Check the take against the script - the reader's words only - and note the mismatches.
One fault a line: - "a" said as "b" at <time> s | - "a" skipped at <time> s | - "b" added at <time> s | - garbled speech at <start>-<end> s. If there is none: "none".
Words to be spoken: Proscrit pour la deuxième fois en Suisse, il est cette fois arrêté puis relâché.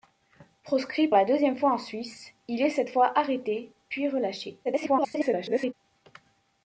- "pour" skipped at 1.1 s
- garbled speech at 4.6-5.7 s